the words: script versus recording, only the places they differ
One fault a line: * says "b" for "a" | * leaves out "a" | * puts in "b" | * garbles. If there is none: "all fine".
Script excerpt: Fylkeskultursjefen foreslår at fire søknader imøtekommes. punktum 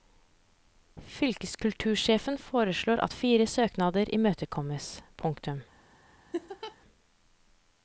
all fine